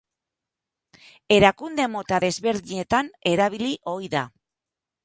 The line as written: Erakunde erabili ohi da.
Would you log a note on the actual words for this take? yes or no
yes